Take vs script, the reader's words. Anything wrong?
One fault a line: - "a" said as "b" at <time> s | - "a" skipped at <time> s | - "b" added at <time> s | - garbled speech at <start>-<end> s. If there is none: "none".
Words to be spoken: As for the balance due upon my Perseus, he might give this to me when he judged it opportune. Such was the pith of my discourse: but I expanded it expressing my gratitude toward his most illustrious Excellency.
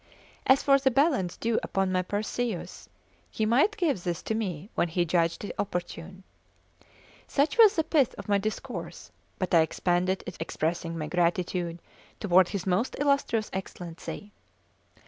none